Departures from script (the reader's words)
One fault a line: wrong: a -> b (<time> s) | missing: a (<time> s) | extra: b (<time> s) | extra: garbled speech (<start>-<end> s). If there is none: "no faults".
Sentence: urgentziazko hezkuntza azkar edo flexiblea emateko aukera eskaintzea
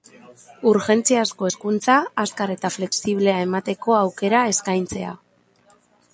wrong: edo -> eta (2.6 s)